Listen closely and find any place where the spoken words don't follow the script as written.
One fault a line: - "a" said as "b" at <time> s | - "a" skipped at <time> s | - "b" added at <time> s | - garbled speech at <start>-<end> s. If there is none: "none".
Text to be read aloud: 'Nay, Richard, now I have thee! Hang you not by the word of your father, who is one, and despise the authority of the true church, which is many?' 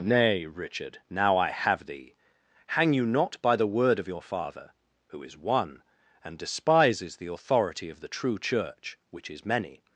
- "despise" said as "despises" at 6.4 s